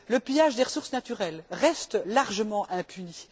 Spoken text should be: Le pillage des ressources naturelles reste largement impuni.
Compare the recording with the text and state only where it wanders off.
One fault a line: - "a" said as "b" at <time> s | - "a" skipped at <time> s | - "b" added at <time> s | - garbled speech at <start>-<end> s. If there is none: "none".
none